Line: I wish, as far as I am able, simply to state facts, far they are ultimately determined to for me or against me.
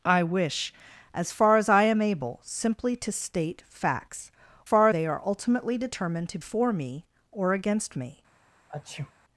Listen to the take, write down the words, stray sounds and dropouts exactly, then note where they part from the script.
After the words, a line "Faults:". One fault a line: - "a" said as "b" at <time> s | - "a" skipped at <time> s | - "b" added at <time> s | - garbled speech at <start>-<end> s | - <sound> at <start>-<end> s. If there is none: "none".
I wish, as far as I am able, simply to state facts, far they are ultimately determined to for me or against me.
Faults:
- sneeze at 8.7-9.1 s